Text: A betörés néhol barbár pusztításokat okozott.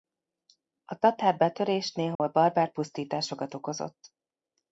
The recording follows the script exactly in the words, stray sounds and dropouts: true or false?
false